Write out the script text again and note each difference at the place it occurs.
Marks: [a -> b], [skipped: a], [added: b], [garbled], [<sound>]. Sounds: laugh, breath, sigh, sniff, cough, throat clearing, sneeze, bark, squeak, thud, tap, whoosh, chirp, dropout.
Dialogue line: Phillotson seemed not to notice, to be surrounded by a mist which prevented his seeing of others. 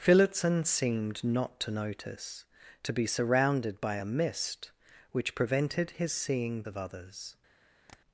Phillotson seemed not to notice, to be surrounded by a mist which prevented his seeing of others. [tap]